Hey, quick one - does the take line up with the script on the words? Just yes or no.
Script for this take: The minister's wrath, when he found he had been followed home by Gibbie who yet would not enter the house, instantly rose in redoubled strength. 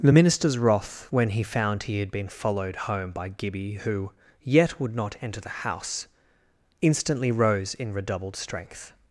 yes